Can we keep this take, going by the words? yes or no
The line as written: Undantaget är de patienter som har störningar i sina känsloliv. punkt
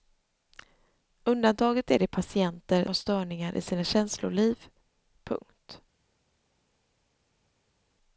no